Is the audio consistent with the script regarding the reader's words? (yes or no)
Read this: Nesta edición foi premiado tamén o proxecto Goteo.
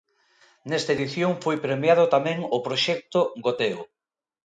yes